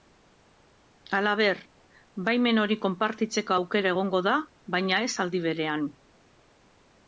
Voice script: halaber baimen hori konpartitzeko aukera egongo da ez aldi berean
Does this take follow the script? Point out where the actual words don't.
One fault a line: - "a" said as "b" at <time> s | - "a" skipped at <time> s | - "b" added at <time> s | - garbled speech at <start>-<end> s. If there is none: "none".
- "baina" added at 4.8 s